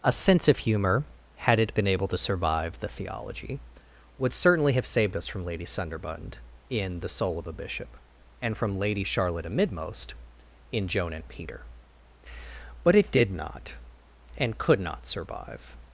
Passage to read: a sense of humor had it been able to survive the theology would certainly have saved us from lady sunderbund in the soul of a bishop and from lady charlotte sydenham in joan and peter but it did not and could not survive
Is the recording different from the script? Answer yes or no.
yes